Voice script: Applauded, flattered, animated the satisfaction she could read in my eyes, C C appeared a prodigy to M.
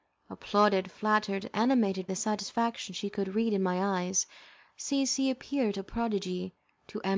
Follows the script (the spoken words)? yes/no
yes